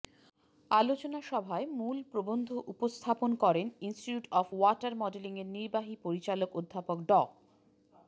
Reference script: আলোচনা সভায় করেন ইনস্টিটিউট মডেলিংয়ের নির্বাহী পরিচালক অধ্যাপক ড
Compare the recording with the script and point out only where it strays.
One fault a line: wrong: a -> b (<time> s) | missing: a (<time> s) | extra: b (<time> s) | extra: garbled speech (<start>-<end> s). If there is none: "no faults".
extra: মূল প্রবন্ধ উপস্থাপন (1.8 s)
extra: অব ওয়াটার (4.3 s)